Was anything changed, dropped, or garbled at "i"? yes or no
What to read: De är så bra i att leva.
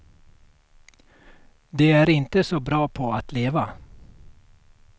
yes